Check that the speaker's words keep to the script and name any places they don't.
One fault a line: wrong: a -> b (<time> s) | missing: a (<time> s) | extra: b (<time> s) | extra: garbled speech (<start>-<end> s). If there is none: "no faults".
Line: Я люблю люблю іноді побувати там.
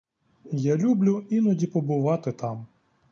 missing: люблю (1.2 s)